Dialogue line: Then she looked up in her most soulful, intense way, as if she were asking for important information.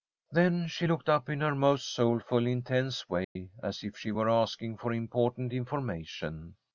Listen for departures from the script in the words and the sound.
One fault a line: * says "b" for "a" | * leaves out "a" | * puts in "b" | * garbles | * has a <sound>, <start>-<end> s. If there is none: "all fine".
* has a dropout, 3.2-3.4 s